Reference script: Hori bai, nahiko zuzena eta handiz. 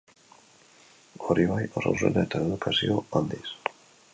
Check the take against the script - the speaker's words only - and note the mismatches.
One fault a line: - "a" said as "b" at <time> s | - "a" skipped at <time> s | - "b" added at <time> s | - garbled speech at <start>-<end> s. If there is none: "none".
- "nahiko" said as "oso" at 1.8 s
- "edukazio" added at 2.5 s